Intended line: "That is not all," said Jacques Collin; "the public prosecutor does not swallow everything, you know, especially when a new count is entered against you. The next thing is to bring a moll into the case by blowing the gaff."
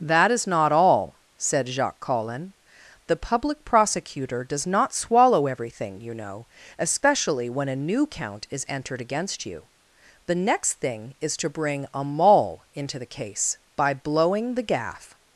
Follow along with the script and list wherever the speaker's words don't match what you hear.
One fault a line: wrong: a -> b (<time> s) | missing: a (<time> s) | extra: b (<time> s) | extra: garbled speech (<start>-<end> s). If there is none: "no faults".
no faults